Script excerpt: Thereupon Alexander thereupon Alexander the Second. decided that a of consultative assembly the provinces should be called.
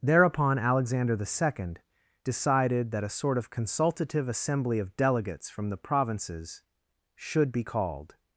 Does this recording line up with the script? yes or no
no